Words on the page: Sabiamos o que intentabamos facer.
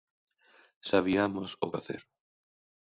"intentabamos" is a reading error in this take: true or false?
true